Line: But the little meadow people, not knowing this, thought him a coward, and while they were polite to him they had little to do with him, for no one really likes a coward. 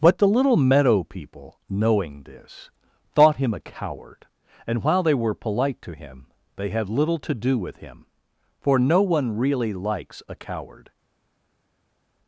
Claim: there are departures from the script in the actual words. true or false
true